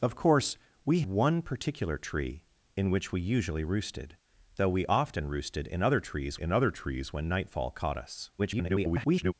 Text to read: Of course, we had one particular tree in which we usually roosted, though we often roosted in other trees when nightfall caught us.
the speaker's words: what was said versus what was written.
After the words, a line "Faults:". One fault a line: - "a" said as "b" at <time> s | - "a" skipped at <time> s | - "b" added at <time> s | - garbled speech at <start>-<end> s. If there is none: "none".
Of course, we one particular tree in which we usually roosted, though we often roosted in other trees in other trees when nightfall caught us. [garbled]
Faults:
- "had" skipped at 1.0 s
- "in other trees" added at 6.3 s
- garbled speech at 8.4-9.3 s